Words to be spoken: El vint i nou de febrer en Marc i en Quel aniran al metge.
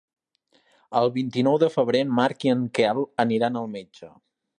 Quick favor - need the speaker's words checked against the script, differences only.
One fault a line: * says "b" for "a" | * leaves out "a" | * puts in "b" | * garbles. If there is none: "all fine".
all fine